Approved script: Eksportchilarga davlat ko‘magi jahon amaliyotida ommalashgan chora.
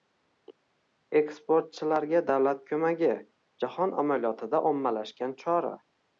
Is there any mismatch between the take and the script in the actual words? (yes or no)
no